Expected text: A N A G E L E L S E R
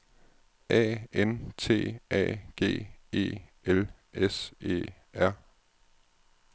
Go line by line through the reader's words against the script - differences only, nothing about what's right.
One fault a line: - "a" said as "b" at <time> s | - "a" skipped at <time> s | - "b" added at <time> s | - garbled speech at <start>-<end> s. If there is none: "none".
- "T" added at 1.6 s
- "E L" skipped at 3.9 s